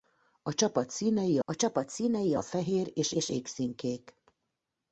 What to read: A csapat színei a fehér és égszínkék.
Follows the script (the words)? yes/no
no